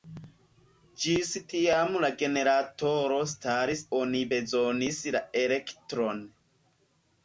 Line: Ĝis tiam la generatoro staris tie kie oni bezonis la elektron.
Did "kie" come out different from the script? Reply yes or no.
yes